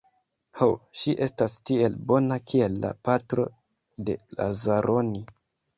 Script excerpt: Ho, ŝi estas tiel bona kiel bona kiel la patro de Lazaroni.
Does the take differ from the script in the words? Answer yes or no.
yes